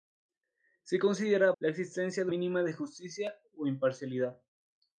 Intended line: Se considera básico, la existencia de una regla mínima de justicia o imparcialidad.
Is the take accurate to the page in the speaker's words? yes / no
no